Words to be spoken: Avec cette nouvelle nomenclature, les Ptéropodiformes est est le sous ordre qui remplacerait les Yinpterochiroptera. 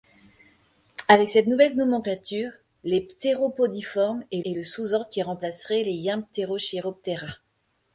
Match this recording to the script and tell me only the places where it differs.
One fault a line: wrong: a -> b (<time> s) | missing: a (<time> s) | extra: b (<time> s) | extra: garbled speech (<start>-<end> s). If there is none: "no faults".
no faults